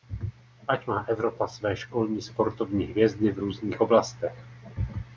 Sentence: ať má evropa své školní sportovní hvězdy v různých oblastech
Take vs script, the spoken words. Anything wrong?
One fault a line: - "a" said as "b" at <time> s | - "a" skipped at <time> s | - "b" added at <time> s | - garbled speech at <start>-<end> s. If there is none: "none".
none